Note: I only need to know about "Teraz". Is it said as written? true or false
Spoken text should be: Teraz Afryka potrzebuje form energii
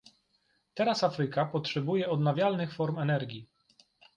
true